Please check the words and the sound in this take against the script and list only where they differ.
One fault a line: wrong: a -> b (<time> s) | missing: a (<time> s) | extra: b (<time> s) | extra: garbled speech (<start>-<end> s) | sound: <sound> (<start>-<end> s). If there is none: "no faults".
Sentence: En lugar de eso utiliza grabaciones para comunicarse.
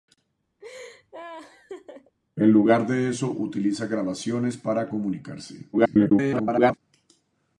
sound: laugh (0.6-2.1 s)
extra: garbled speech (5.7-6.8 s)